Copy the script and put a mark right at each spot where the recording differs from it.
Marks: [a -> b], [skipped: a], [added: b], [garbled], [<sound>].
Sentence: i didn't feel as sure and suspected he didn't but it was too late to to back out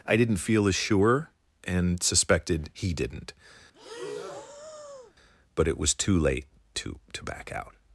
i didn't feel as sure and suspected he didn't [breath] but it was too late to to back out